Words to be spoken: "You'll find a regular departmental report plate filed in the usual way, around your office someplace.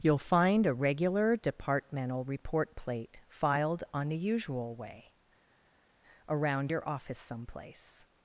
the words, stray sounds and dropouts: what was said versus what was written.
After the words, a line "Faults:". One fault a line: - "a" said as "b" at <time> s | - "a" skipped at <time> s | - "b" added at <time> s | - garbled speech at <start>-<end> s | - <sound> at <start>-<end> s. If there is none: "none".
"You'll find a regular departmental report plate filed on the usual way, around your office someplace.
Faults:
- "in" said as "on" at 3.9 s